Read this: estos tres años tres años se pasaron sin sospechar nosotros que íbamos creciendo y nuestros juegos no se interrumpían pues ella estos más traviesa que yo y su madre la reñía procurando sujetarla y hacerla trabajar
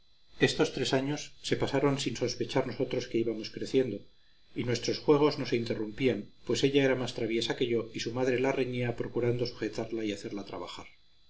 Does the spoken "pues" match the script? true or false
true